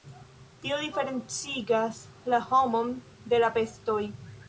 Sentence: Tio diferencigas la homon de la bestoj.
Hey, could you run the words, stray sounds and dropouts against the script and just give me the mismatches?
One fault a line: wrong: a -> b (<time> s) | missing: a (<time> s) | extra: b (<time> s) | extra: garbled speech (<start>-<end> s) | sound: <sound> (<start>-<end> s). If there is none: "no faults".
no faults